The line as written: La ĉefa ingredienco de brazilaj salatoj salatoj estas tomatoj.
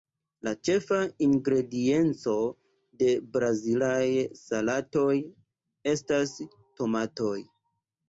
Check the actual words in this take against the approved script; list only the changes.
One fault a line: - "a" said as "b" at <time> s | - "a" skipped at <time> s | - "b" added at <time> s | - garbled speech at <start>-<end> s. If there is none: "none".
- "salatoj" skipped at 5.2 s